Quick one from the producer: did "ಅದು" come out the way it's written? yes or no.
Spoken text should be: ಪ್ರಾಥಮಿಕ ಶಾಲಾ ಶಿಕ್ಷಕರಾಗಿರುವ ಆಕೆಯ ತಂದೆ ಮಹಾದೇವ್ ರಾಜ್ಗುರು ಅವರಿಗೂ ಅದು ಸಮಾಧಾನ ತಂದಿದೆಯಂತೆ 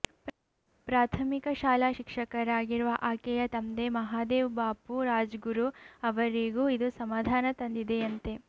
no